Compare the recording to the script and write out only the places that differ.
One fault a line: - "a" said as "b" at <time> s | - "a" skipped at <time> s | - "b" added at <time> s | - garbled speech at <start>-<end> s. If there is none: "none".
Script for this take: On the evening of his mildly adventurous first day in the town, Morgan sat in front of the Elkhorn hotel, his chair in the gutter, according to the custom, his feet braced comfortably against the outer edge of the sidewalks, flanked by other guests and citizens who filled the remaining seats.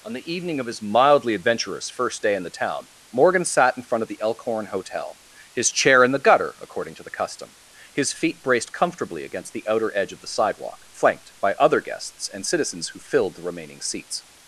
- "sidewalks" said as "sidewalk" at 10.3 s